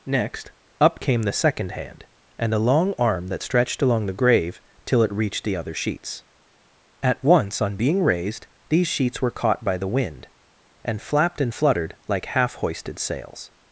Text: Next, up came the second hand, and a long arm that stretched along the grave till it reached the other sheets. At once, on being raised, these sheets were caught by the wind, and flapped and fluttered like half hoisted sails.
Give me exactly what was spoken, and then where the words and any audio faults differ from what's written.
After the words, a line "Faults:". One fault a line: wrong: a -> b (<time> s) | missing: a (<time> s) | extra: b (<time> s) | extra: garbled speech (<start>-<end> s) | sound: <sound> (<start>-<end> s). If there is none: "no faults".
Next, up came the second hand, and a long arm that stretched along the grave till it reached the other sheets. At once, on being raised, these sheets were caught by the wind, and flapped and fluttered like half hoisted sails.
Faults:
no faults